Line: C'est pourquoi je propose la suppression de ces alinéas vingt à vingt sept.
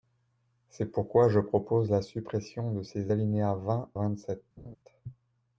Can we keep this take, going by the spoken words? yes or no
no